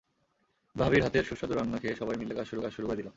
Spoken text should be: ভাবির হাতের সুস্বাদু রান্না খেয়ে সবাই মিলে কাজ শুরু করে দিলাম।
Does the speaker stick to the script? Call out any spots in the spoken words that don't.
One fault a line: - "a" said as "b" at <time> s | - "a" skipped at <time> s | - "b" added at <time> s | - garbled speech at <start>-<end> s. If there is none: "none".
- "কাজ শুরু" added at 2.6 s